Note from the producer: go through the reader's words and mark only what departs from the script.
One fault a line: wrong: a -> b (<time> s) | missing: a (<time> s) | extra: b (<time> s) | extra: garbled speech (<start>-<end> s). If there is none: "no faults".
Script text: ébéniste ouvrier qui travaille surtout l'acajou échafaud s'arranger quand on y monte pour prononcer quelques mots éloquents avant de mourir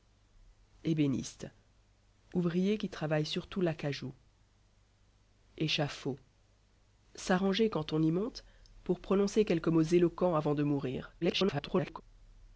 extra: garbled speech (11.2-12.0 s)